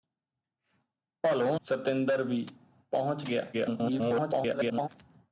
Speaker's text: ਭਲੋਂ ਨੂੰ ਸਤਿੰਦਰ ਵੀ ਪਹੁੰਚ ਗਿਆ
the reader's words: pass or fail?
fail